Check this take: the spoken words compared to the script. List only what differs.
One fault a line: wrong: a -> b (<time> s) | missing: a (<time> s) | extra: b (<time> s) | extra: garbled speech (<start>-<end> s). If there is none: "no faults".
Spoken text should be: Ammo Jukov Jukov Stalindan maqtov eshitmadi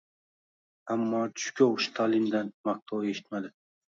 missing: Jukov (1.8 s)